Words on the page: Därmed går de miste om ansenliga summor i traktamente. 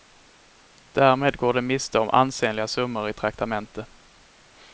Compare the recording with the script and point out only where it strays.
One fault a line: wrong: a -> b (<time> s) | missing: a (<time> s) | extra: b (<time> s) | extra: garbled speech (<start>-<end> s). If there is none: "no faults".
no faults